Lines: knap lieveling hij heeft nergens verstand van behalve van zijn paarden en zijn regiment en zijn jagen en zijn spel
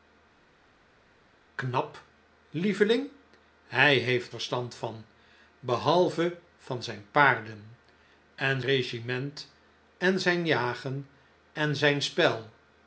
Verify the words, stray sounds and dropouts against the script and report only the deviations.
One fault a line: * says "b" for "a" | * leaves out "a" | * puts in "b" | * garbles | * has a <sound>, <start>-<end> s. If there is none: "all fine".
* leaves out "nergens"
* leaves out "zijn"